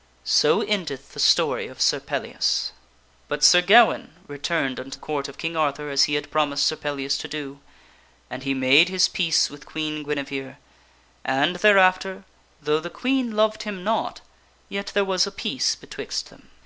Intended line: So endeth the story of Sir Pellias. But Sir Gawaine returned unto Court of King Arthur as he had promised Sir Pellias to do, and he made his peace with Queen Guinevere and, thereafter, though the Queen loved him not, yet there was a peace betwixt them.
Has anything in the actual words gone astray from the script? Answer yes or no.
no